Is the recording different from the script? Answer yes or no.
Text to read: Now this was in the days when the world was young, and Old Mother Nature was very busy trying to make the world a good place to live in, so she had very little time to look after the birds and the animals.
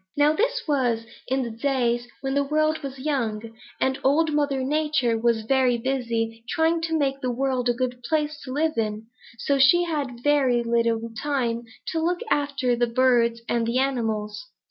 no